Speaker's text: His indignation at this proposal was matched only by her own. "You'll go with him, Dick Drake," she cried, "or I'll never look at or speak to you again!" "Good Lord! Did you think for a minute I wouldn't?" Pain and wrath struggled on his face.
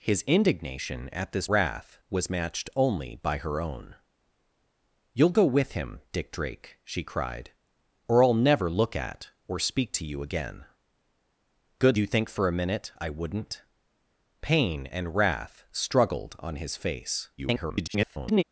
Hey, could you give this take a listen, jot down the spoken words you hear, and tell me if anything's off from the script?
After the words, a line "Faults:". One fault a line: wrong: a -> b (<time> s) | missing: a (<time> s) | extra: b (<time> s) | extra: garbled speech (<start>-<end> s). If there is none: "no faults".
His indignation at this wrath was matched only by her own. "You'll go with him, Dick Drake," she cried, "or I'll never look at or speak to you again!" "Good You think for a minute I wouldn't?" Pain and wrath struggled on his face. [garbled]
Faults:
wrong: proposal -> wrath (1.5 s)
missing: Lord Did (12.0 s)
extra: garbled speech (17.4-18.4 s)